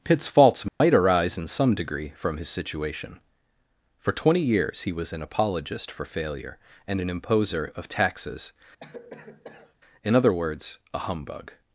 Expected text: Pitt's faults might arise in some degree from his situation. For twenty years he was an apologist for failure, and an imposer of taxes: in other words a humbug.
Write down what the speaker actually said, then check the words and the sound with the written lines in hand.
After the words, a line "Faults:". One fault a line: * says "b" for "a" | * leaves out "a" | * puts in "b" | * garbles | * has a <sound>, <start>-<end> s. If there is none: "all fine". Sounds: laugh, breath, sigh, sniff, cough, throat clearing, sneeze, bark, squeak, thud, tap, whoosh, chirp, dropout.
Pitt's faults might arise in some degree from his situation. For twenty years he was an apologist for failure, and an imposer of taxes: in other words a humbug.
Faults:
* has a dropout, 0.7-0.8 s
* has a cough, 8.8-9.8 s